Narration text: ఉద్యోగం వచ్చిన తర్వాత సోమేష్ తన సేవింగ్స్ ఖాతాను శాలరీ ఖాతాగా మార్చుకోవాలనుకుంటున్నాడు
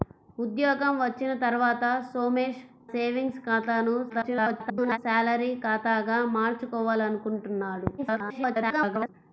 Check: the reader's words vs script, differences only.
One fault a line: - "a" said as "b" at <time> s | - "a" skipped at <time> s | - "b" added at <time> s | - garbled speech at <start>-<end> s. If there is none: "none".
- "తన" skipped at 2.6 s
- garbled speech at 4.1-5.0 s
- garbled speech at 8.0-9.1 s